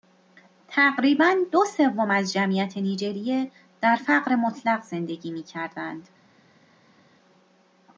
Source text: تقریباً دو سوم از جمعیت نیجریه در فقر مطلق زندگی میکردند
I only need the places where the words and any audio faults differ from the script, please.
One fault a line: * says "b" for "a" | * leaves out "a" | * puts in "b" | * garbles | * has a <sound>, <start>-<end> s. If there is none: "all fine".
all fine